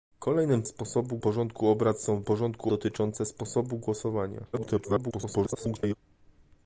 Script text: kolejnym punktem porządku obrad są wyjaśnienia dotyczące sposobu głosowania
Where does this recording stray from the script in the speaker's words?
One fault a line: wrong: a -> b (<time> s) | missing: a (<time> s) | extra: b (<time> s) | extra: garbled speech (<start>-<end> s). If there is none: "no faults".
wrong: punktem -> sposobu (0.7 s)
wrong: wyjaśnienia -> porządku (2.2 s)
extra: garbled speech (4.5-6.0 s)